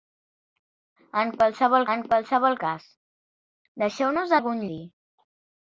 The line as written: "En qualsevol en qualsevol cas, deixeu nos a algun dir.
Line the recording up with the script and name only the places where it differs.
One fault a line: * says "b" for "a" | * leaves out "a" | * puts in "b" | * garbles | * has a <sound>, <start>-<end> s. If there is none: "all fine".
all fine